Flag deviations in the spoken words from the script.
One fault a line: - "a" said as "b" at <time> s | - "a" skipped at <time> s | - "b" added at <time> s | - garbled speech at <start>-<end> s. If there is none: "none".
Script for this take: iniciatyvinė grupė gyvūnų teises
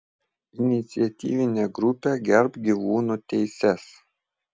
- "gerbk" added at 2.3 s